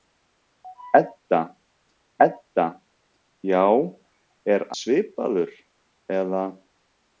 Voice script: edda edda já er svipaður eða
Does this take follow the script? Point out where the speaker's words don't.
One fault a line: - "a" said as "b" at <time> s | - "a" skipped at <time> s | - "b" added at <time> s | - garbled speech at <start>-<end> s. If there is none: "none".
none